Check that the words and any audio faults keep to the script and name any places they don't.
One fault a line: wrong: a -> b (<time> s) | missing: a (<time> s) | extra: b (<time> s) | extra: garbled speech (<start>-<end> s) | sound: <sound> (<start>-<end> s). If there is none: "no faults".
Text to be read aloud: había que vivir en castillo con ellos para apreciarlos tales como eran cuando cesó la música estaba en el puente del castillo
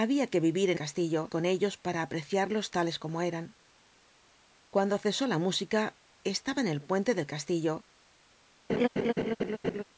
sound: laugh (8.7-9.8 s)